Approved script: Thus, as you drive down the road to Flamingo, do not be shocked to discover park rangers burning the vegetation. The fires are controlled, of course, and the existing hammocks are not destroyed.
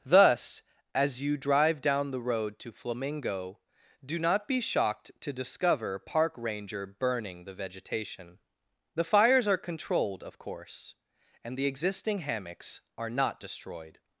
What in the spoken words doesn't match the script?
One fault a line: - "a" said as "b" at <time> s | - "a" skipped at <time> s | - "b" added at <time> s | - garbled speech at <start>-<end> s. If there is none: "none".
- "rangers" said as "ranger" at 6.4 s